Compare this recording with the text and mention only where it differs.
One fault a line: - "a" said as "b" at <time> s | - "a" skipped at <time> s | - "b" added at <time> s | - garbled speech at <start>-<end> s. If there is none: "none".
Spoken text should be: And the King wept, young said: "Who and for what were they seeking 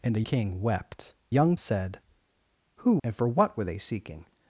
none